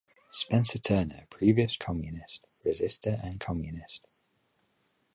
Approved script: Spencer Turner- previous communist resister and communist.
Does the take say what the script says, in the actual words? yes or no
yes